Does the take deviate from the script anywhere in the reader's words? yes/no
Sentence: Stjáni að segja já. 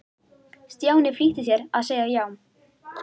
yes